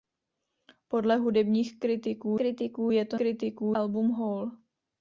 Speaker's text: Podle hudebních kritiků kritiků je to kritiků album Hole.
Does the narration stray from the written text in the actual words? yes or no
no